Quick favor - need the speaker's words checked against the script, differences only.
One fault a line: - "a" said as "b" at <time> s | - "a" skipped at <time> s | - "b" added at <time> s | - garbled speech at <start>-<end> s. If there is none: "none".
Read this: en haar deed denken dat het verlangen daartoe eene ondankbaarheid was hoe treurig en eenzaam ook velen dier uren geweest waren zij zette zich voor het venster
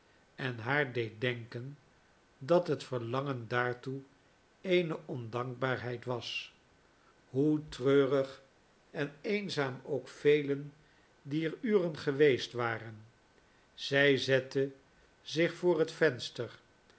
none